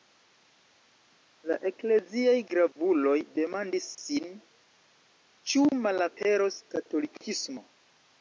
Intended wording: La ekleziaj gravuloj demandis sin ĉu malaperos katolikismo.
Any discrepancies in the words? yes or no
no